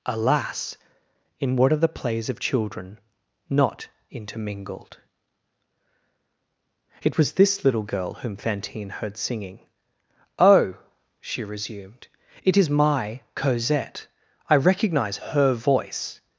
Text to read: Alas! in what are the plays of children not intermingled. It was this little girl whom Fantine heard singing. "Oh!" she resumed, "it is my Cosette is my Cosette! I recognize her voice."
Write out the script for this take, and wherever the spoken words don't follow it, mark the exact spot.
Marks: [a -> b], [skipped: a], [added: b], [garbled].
Alas! in what are the plays of children not intermingled. It was this little girl whom Fantine heard singing. "Oh!" she resumed, "it is my Cosette [skipped: is my Cosette!] I recognize her voice."